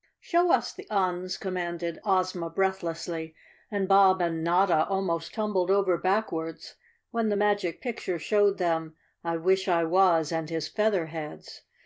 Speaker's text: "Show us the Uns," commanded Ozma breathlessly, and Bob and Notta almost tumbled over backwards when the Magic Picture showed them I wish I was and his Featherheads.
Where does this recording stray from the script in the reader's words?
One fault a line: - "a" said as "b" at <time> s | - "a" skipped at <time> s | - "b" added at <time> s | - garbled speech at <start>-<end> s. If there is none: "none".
none